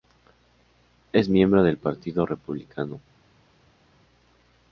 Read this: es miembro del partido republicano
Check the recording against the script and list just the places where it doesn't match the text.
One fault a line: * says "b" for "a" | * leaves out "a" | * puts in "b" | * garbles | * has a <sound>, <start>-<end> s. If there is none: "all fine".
all fine